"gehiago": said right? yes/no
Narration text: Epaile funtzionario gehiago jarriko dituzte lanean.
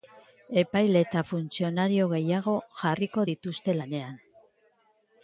yes